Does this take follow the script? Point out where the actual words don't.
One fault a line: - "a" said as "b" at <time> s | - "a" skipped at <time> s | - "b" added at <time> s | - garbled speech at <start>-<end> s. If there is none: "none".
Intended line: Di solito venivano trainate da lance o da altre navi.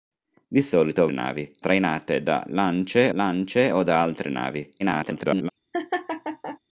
- "venivano" said as "navi" at 1.1 s
- "lance" added at 3.1 s
- garbled speech at 4.8-5.5 s